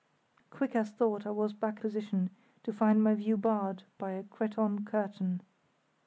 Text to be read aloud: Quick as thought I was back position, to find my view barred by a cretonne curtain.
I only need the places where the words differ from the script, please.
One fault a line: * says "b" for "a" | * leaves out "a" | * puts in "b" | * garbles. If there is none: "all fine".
all fine